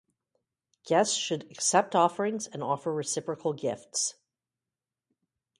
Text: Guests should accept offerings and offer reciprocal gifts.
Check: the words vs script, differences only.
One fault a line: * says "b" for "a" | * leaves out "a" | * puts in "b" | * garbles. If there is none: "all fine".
all fine